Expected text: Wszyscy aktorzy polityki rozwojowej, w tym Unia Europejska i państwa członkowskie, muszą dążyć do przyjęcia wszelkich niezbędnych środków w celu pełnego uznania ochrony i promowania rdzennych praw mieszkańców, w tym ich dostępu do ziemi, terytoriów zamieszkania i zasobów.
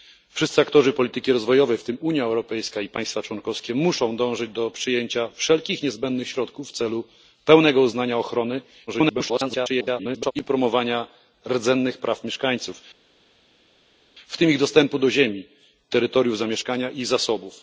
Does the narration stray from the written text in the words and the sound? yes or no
yes